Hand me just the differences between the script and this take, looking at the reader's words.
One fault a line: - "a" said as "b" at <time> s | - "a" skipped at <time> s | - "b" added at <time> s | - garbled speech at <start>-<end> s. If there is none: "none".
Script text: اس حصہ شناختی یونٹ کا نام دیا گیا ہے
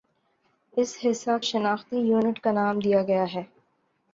none